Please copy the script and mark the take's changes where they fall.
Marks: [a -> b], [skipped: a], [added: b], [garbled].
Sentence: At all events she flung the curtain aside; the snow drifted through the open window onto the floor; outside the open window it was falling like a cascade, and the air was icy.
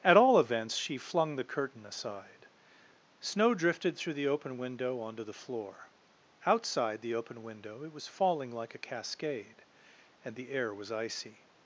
At all events she flung the curtain aside; [skipped: the] snow drifted through the open window onto the floor; outside the open window it was falling like a cascade, and the air was icy.